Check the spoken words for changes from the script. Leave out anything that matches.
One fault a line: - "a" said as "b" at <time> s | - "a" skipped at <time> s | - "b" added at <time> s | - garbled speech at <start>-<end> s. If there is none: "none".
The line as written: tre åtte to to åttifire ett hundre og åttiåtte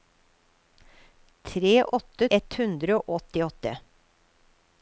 - "to to åttifire" skipped at 2.3 s